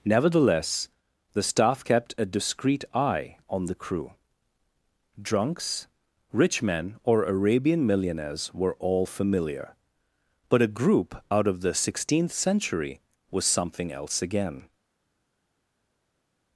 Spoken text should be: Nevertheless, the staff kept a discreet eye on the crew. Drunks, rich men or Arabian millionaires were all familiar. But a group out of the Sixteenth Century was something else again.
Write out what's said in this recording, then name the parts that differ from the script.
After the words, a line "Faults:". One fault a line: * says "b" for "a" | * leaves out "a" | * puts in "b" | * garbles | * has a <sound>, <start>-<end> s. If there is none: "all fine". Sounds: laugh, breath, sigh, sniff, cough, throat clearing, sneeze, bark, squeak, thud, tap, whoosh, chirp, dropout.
Nevertheless, the staff kept a discreet eye on the crew. Drunks, rich men or Arabian millionaires were all familiar. But a group out of the Sixteenth Century was something else again.
Faults:
all fine